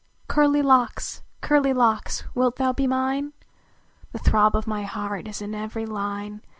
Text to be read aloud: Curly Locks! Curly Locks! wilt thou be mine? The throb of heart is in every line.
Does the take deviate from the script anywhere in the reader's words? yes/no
yes